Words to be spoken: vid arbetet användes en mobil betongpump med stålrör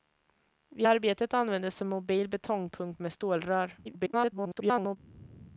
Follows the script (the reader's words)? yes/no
no